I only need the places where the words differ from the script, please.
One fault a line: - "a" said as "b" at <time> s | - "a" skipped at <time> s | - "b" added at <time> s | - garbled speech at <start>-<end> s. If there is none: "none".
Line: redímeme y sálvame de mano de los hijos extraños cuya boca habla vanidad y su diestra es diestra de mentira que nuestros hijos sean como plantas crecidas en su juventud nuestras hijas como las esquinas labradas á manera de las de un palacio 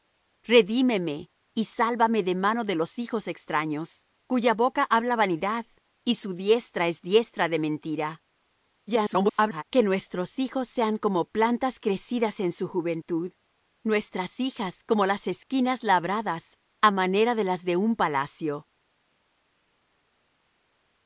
- garbled speech at 8.9-9.6 s